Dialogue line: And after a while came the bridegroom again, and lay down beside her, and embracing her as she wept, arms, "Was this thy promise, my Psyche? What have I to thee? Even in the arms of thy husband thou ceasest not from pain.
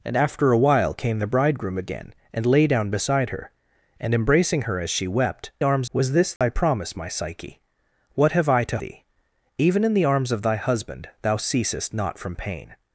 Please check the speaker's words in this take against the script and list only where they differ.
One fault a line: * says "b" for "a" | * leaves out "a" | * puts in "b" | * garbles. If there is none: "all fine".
all fine